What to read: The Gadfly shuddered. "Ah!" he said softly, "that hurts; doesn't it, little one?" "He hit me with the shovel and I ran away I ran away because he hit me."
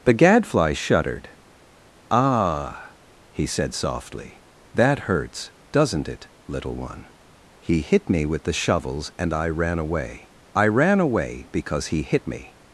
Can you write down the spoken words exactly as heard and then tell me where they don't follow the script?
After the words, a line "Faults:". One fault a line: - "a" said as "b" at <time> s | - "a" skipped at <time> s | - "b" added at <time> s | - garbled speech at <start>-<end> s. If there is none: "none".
The Gadfly shuddered. "Ah!" he said softly, "that hurts; doesn't it, little one?" "He hit me with the shovels and I ran away I ran away because he hit me."
Faults:
- "shovel" said as "shovels" at 8.5 s